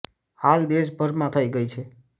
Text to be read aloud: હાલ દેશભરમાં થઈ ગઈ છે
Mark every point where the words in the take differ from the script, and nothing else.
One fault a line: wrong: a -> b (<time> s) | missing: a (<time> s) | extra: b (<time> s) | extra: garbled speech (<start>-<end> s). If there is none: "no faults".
no faults